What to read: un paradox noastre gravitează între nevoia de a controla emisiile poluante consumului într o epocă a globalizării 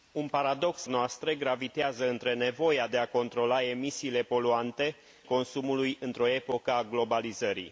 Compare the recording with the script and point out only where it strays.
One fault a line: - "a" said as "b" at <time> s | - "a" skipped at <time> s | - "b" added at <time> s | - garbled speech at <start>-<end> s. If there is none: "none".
none